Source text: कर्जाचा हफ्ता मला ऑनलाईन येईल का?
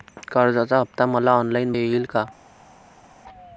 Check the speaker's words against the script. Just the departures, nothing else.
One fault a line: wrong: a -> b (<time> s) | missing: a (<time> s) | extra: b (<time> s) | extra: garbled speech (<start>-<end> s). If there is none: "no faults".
no faults